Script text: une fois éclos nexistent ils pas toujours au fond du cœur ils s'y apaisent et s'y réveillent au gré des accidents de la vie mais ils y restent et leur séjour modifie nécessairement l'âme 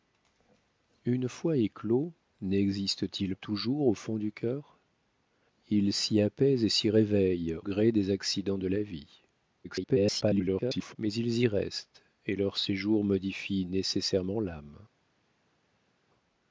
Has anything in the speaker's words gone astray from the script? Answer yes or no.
yes